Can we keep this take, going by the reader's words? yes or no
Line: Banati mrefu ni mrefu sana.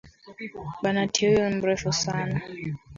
no